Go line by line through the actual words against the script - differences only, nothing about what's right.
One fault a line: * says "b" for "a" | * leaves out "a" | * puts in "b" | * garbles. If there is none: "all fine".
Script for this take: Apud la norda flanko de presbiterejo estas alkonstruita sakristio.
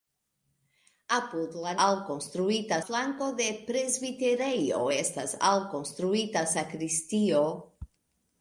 * says "alkonstruita" for "norda"